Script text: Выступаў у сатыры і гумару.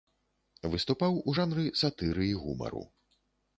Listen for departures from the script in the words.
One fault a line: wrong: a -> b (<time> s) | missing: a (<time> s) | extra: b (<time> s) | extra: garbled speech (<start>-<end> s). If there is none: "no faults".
extra: жанры (1.4 s)